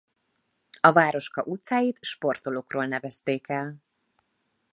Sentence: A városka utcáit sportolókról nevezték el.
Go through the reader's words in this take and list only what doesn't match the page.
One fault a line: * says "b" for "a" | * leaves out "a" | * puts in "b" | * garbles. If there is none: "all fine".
all fine